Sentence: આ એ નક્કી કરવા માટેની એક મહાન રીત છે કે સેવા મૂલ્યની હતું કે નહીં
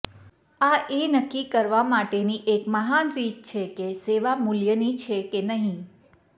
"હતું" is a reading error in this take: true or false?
true